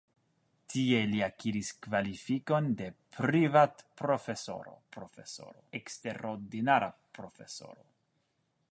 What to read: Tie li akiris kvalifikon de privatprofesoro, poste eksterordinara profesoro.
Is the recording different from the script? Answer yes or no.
yes